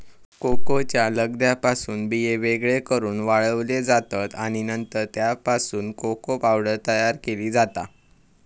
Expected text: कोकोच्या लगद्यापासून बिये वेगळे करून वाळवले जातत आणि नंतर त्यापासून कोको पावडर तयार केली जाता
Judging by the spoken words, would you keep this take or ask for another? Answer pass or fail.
pass